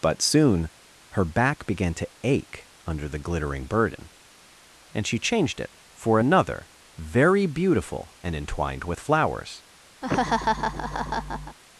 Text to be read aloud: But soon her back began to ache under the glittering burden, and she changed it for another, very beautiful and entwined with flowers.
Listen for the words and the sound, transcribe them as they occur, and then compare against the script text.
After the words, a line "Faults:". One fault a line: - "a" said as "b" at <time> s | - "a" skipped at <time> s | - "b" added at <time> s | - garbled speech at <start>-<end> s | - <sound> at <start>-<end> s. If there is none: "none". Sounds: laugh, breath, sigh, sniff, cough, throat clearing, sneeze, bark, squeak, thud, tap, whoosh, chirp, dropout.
But soon her back began to ache under the glittering burden, and she changed it for another, very beautiful and entwined with flowers.
Faults:
- laugh at 10.0-11.6 s